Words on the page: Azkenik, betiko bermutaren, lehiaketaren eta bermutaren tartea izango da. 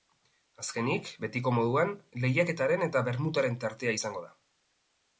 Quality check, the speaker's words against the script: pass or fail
fail